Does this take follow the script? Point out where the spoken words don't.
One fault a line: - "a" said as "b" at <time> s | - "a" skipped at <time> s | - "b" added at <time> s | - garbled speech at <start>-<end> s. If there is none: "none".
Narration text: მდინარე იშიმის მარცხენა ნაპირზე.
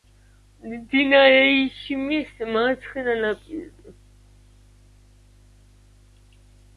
none